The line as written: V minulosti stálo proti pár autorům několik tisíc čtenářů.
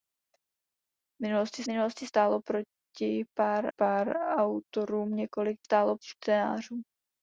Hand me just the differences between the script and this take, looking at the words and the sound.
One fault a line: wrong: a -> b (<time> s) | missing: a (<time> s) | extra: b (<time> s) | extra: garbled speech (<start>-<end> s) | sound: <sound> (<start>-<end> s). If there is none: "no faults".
extra: minulosti (1.7 s)
extra: pár (3.8 s)
wrong: tisíc -> stálo (5.6 s)